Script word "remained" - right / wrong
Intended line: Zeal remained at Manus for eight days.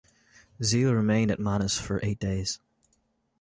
right